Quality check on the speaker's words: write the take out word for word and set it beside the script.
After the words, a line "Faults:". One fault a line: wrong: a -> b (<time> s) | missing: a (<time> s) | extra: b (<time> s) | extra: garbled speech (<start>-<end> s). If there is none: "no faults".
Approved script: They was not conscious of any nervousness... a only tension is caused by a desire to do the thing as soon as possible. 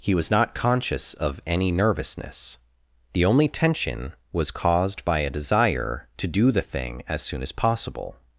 He was not conscious of any nervousness... the only tension was caused by a desire to do the thing as soon as possible.
Faults:
wrong: They -> He (0.0 s)
wrong: a -> the (3.1 s)
wrong: is -> was (4.3 s)